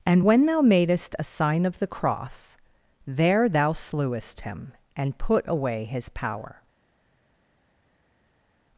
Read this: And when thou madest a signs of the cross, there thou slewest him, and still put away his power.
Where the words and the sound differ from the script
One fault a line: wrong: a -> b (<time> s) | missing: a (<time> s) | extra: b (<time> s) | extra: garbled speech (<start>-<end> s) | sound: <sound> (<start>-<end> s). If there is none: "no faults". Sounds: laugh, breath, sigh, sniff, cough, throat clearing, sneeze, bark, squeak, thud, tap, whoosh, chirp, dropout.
wrong: signs -> sign (1.2 s)
missing: still (5.2 s)